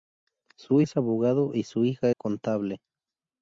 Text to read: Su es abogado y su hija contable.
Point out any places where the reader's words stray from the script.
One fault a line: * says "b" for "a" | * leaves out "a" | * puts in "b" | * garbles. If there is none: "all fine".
all fine